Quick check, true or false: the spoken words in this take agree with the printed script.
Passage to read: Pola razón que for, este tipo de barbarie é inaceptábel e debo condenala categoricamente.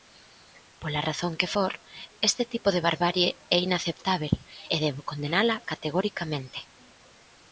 true